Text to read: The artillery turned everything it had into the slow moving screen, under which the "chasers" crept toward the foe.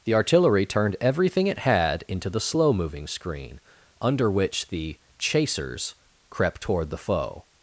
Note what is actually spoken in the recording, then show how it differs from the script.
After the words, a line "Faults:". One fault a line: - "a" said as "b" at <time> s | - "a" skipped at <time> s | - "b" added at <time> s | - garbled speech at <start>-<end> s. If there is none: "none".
The artillery turned everything it had into the slow moving screen, under which the "chasers" crept toward the foe.
Faults:
none